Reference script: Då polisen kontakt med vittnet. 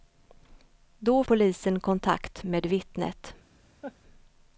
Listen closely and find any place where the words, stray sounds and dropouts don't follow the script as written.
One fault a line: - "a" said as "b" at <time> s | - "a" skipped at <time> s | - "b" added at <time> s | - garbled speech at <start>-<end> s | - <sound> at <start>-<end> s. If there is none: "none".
- laugh at 3.8-4.0 s